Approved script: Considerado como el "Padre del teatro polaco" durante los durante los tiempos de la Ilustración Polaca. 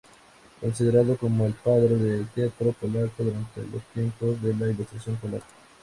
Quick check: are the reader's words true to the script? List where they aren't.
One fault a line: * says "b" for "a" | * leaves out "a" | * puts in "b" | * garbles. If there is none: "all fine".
* leaves out "durante los"